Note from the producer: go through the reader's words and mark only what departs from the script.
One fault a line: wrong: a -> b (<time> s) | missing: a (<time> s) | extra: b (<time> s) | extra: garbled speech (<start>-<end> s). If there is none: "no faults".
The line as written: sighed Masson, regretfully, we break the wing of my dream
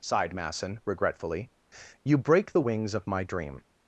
wrong: we -> you (2.0 s)
wrong: wing -> wings (2.6 s)